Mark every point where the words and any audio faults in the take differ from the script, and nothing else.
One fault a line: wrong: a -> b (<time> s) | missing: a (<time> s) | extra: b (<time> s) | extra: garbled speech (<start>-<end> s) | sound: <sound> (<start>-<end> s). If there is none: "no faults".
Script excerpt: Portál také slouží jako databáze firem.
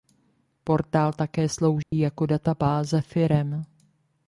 sound: dropout (1.8-1.9 s)